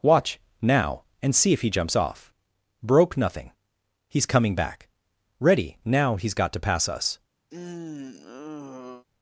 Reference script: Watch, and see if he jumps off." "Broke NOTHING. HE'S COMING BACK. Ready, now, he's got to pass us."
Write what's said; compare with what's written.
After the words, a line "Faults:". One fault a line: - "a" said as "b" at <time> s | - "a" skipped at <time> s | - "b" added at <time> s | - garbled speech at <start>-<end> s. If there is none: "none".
Watch, now, and see if he jumps off." "Broke NOTHING. HE'S COMING BACK. Ready, now, he's got to pass us."
Faults:
- "now" added at 0.6 s